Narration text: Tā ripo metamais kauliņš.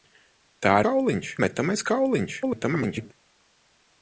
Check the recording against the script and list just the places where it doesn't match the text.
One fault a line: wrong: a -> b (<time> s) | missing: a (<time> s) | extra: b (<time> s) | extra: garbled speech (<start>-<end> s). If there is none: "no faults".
wrong: ripo -> kauliņš (0.9 s)
extra: garbled speech (2.4-3.1 s)